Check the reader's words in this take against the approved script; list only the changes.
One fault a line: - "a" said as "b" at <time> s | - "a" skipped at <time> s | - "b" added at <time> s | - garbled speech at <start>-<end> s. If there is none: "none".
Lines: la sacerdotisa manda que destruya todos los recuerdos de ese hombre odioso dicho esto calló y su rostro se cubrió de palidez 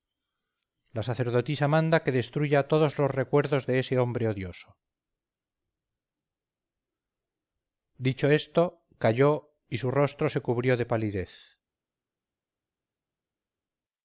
none